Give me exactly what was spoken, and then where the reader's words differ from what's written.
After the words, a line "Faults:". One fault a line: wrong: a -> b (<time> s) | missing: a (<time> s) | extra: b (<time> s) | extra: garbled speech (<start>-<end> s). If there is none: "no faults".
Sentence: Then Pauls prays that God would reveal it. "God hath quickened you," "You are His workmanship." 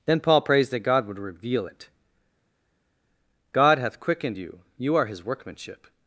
Then Paul prays that God would reveal it. "God hath quickened you," "You are His workmanship."
Faults:
wrong: Pauls -> Paul (0.2 s)